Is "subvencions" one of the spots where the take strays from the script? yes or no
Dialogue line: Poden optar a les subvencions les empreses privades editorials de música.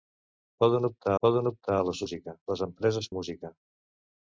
yes